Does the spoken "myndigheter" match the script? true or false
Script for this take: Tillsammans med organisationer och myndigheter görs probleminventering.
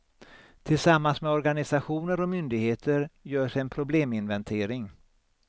true